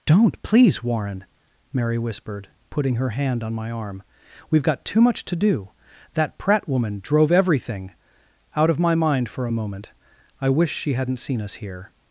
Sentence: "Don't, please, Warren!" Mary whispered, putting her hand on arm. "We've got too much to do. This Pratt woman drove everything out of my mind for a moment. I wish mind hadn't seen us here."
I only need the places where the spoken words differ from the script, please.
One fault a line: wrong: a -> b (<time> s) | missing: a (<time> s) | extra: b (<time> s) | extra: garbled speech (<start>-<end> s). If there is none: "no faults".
extra: my (3.5 s)
wrong: This -> That (6.2 s)
wrong: mind -> she (10.7 s)